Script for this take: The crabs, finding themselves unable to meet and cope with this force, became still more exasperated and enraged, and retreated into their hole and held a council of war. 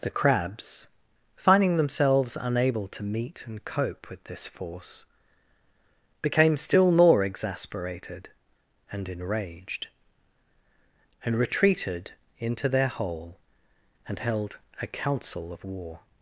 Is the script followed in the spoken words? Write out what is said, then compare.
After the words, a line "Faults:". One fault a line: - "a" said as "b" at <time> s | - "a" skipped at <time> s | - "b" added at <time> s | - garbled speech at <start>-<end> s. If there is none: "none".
The crabs, finding themselves unable to meet and cope with this force, became still more exasperated and enraged, and retreated into their hole and held a council of war.
Faults:
none